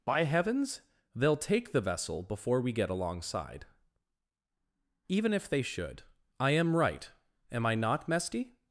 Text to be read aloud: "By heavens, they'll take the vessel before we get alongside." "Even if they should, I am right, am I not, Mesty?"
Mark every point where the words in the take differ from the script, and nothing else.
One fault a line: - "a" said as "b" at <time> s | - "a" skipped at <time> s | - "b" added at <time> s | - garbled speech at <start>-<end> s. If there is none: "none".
none